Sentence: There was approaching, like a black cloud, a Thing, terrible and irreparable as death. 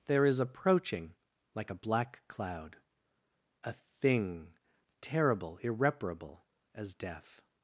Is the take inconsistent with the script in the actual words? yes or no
yes